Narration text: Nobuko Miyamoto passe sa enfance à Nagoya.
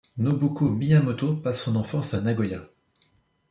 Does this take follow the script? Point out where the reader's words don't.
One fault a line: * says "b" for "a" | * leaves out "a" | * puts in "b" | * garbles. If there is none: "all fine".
* says "son" for "sa"